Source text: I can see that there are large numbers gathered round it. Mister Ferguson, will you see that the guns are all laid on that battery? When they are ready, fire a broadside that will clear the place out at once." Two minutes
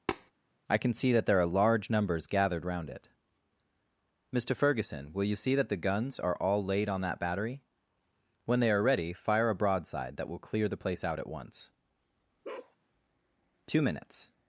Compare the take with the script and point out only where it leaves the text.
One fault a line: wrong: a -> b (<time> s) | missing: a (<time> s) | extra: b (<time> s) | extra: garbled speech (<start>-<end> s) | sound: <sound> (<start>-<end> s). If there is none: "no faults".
sound: tap (0.1-0.3 s)
sound: bark (12.4-12.8 s)